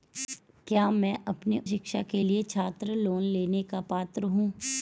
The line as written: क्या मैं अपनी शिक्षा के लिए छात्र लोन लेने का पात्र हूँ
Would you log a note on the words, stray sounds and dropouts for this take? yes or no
no